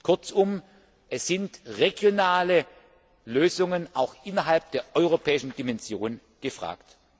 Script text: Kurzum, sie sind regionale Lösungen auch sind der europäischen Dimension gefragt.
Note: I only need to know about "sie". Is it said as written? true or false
false